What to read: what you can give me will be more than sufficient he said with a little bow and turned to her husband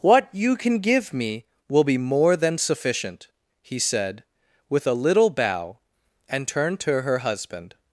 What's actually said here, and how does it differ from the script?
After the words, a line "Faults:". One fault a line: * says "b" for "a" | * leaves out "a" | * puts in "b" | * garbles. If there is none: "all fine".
what you can give me will be more than sufficient he said with a little bow and turned to her husband
Faults:
all fine